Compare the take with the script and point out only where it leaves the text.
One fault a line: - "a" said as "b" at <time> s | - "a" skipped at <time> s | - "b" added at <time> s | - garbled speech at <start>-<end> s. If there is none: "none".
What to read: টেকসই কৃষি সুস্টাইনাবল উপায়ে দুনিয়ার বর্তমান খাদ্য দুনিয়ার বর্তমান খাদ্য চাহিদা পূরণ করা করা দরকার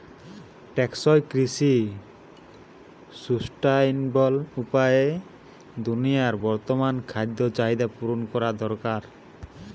- "দুনিয়ার বর্তমান খাদ্য" skipped at 7.4 s
- "করা" skipped at 8.5 s